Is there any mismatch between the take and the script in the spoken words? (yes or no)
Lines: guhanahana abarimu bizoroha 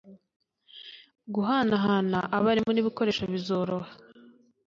yes